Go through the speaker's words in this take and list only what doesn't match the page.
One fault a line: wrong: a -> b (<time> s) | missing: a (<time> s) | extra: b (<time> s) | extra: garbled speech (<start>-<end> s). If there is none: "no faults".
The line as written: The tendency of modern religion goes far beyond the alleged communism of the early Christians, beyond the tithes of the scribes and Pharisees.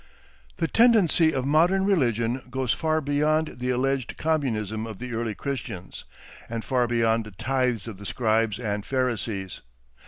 extra: and far (6.5 s)